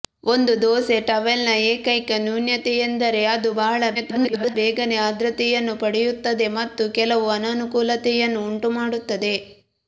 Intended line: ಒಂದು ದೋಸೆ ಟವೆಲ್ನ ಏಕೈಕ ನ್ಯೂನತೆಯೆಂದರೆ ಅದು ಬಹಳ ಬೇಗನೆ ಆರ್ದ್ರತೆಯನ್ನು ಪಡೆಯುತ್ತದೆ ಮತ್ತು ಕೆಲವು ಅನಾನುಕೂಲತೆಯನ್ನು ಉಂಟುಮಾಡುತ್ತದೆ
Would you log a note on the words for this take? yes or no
yes